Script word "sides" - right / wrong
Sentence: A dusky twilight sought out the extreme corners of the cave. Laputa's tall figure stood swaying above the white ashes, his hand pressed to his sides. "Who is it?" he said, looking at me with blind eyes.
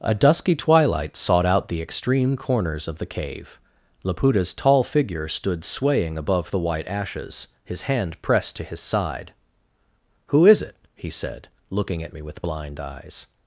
wrong